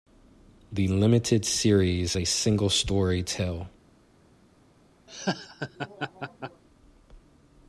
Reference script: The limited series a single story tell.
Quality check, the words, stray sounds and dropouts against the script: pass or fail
fail